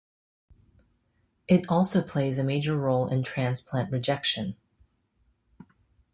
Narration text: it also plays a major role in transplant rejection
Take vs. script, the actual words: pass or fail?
pass